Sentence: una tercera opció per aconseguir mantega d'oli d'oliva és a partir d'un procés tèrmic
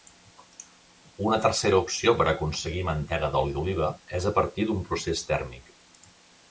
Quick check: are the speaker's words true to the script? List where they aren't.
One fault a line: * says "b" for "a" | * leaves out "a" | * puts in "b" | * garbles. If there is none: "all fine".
all fine